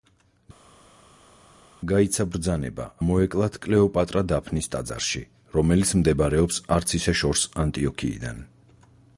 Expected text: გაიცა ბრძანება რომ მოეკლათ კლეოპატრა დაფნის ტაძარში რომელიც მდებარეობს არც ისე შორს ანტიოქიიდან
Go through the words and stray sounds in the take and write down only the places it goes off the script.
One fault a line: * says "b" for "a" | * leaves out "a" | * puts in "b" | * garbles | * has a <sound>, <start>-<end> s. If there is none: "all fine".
* leaves out "რომ"